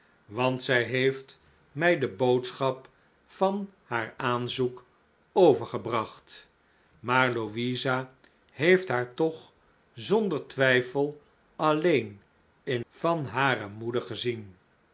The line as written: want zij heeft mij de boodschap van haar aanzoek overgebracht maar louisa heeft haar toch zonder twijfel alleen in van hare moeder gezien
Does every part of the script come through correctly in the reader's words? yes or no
yes